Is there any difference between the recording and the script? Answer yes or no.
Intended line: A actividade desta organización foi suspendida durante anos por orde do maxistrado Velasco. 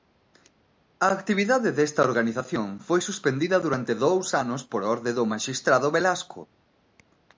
yes